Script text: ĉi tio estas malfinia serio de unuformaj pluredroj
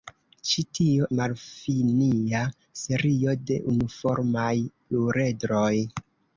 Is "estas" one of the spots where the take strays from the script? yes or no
yes